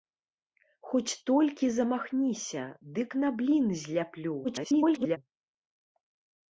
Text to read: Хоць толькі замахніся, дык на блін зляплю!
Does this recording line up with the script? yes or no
no